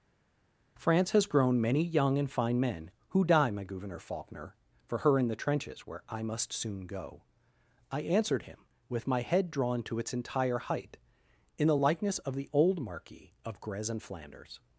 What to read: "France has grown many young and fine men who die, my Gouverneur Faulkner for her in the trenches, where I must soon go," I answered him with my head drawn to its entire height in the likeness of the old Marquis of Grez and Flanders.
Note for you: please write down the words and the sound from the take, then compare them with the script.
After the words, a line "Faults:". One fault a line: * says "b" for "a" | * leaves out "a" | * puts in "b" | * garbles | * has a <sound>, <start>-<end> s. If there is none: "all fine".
"France has grown many young and fine men who die, my Gouverneur Faulkner for her in the trenches, where I must soon go," I answered him with my head drawn to its entire height in the likeness of the old Marquis of Grez and Flanders.
Faults:
all fine